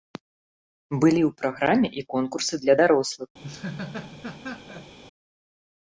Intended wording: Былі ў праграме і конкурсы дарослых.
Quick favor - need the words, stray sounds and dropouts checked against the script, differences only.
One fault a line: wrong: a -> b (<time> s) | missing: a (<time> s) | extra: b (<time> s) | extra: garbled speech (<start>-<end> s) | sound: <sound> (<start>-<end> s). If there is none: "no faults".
extra: для (2.6 s)
sound: laugh (3.4-5.0 s)